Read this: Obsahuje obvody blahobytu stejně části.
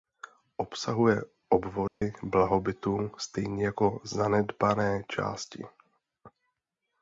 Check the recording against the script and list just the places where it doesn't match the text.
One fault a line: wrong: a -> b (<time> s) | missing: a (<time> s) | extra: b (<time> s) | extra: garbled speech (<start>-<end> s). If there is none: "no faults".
extra: jako zanedbané (3.6 s)